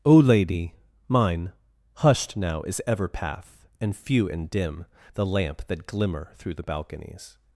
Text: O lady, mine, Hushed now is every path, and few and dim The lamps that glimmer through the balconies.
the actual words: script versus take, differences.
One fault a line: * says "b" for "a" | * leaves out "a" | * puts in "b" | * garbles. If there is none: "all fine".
* says "ever" for "every"
* says "lamp" for "lamps"